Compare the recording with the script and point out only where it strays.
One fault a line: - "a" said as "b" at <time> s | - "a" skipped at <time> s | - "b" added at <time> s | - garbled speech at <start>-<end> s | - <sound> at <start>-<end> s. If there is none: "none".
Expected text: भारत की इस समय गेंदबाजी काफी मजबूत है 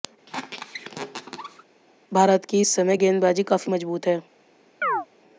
- squeak at 0.3-1.6 s
- chirp at 4.8-5.1 s